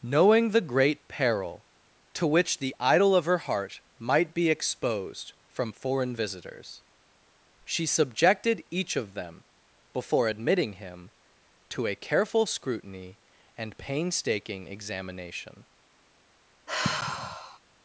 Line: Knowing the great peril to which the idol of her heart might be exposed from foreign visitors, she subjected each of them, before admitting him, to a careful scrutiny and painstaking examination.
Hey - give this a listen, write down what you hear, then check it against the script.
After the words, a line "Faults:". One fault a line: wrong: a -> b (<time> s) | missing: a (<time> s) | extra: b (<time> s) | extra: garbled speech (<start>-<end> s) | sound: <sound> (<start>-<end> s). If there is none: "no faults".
Knowing the great peril to which the idol of her heart might be exposed from foreign visitors, she subjected each of them, before admitting him, to a careful scrutiny and painstaking examination.
Faults:
sound: sigh (16.7-17.6 s)